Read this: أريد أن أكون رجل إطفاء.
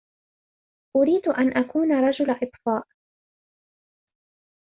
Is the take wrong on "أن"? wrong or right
right